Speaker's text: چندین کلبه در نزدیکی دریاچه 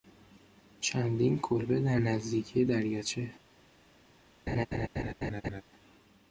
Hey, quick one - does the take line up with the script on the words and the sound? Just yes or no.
no